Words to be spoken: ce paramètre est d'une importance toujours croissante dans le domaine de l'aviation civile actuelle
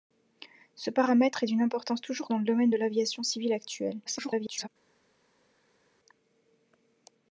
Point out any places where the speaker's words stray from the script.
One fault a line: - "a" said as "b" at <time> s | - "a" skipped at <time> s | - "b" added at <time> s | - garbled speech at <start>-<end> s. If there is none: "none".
- "croissante" skipped at 2.3 s
- garbled speech at 4.1-4.7 s